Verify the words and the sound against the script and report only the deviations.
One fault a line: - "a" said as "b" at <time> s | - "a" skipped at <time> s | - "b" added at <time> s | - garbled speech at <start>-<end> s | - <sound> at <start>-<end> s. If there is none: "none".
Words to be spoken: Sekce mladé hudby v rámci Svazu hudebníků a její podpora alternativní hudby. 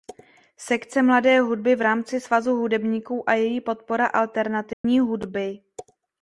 - dropout at 4.7-4.8 s